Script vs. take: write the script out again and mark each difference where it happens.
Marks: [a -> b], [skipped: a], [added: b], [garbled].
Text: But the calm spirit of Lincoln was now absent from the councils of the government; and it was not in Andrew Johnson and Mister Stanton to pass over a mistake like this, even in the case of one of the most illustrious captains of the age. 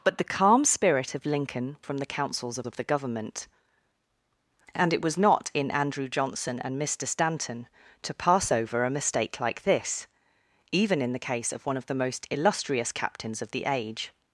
But the calm spirit of Lincoln [skipped: was now absent] from the councils of [added: of] the government; and it was not in Andrew Johnson and Mister Stanton to pass over a mistake like this, even in the case of one of the most illustrious captains of the age.